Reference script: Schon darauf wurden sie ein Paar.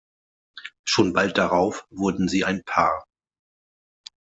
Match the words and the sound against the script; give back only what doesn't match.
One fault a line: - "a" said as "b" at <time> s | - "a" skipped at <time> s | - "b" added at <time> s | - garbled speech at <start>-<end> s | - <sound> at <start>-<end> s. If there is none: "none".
- "bald" added at 1.1 s